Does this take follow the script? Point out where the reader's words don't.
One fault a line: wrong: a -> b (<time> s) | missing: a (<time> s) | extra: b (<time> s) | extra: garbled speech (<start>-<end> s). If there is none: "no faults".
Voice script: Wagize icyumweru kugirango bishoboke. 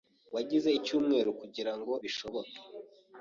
no faults